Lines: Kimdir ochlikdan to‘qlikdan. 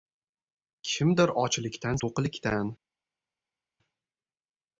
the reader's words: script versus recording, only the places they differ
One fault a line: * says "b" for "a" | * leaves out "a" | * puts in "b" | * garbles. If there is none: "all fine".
all fine